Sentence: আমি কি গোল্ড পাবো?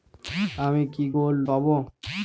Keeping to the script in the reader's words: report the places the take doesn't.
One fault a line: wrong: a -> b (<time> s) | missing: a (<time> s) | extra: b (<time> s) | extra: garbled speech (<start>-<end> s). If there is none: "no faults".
no faults